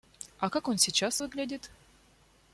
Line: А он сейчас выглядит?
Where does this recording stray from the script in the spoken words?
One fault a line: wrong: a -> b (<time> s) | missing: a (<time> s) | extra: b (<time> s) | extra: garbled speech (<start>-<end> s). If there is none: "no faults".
extra: как (0.5 s)